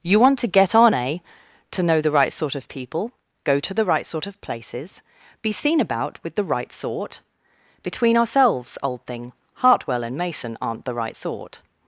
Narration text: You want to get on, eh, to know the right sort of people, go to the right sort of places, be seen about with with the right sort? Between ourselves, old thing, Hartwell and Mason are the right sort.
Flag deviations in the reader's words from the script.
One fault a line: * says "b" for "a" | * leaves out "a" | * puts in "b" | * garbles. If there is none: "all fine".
* leaves out "with"
* says "aren't" for "are"